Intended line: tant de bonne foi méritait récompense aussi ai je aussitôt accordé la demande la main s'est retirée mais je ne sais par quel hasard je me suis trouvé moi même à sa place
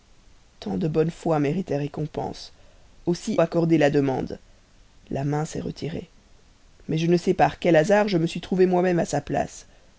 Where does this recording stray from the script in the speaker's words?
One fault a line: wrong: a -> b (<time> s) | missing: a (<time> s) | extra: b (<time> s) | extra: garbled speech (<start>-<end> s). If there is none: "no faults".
missing: ai je aussitôt (3.4 s)